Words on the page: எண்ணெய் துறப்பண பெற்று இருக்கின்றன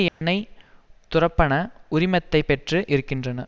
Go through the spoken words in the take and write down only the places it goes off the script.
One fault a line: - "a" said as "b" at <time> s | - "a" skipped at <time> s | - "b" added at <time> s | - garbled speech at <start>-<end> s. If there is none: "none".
- "உரிமத்தை" added at 1.9 s